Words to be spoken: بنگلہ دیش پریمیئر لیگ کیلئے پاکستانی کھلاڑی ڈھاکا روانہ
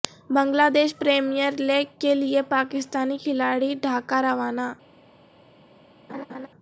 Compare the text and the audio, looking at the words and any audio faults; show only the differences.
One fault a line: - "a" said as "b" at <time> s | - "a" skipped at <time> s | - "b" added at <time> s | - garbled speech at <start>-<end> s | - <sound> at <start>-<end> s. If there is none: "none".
- laugh at 6.1-6.5 s